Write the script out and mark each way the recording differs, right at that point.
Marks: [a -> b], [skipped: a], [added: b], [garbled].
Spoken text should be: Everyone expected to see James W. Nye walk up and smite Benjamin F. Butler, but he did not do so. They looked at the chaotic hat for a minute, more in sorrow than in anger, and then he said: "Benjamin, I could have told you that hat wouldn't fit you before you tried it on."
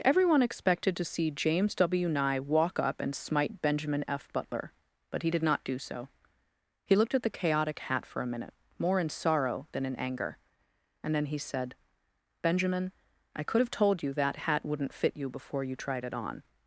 Everyone expected to see James W. Nye walk up and smite Benjamin F. Butler, but he did not do so. [They -> He] looked at the chaotic hat for a minute, more in sorrow than in anger, and then he said: "Benjamin, I could have told you that hat wouldn't fit you before you tried it on."